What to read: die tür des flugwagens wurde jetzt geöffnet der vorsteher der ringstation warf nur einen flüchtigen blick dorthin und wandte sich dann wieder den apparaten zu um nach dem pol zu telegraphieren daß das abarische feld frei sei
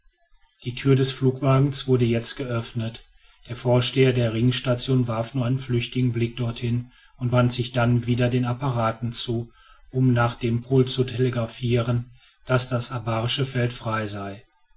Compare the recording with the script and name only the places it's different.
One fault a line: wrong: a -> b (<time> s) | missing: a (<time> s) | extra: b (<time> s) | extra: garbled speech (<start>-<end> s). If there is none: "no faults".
no faults